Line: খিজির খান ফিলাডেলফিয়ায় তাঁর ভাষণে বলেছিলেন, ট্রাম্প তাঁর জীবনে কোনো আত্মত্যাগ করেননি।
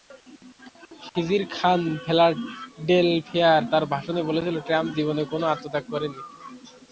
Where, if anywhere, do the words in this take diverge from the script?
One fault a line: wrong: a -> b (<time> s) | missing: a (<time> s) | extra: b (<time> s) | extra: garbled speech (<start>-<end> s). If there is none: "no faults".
missing: তাঁর (4.9 s)